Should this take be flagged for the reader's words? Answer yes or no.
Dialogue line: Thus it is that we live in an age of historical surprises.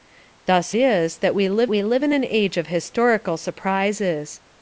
yes